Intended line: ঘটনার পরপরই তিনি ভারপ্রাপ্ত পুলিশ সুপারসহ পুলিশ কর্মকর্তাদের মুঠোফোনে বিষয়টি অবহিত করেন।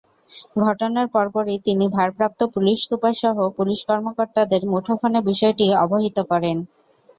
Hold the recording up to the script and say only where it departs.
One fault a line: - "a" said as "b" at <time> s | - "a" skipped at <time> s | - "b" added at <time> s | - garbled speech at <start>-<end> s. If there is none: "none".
none